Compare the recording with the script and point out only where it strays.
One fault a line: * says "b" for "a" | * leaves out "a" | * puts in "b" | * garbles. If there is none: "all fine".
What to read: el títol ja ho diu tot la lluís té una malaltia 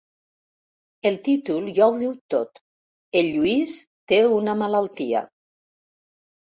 * says "el" for "la"